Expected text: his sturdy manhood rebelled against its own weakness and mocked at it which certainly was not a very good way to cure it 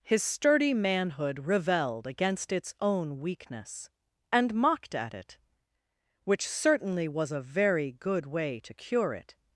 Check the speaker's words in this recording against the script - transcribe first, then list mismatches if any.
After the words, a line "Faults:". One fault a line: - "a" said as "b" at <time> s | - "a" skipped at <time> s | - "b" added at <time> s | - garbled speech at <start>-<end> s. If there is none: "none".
his sturdy manhood rebelled against its own weakness and mocked at it which certainly was a very good way to cure it
Faults:
- "not" skipped at 7.3 s